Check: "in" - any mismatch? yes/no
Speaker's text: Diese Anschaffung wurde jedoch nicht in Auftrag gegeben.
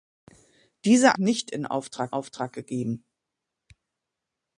no